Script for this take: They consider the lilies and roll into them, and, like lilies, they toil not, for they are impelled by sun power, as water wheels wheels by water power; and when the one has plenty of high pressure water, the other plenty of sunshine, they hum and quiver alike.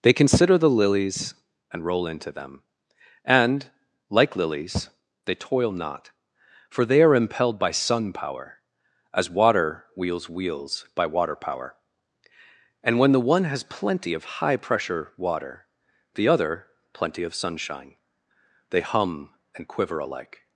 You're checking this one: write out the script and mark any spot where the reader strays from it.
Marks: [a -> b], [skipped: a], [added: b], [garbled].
They consider the lilies and roll into them, and, like lilies, they toil not, for they are impelled by sun power, as water wheels wheels by water power; and when the one has plenty of high pressure water, the other plenty of sunshine, they hum and quiver alike.